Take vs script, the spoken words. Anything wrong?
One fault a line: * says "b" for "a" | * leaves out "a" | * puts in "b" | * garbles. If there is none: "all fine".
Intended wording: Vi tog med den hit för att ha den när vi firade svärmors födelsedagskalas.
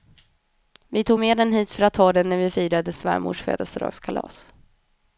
all fine